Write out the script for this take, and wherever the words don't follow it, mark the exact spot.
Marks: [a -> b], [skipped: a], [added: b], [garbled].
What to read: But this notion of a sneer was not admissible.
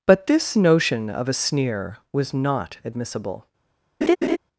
But this notion of a sneer was not admissible.